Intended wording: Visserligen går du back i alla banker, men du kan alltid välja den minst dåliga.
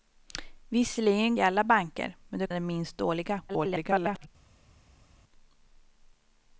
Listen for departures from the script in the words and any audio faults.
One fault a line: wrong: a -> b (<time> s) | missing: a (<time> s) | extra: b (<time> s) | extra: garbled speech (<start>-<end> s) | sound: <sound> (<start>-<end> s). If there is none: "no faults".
missing: går du back (1.4 s)
missing: kan alltid välja (2.5 s)
extra: garbled speech (3.5-4.3 s)